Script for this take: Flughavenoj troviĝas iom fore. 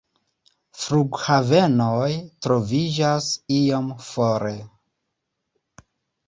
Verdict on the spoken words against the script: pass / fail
pass